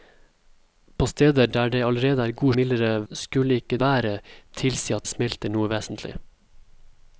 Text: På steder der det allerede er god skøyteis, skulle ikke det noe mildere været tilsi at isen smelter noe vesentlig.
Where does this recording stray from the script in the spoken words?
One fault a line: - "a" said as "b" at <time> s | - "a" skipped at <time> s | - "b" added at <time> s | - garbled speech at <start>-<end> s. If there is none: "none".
- "skøyteis" said as "mildere" at 2.5 s
- "det noe mildere" skipped at 3.8 s
- "isen" skipped at 5.1 s